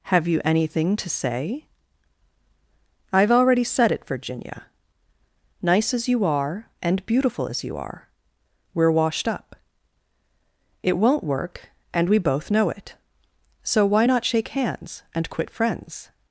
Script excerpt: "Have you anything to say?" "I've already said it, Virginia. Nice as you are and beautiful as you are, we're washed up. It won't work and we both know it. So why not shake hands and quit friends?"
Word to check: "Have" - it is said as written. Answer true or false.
true